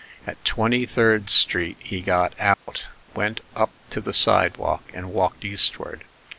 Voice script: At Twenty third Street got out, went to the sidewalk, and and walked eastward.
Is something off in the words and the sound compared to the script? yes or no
yes